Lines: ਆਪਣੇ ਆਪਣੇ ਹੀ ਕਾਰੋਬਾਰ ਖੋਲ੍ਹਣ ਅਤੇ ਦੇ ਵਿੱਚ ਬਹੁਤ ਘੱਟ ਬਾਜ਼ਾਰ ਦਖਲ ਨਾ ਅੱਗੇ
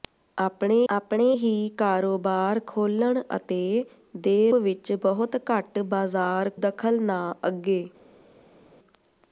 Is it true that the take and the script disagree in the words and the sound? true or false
false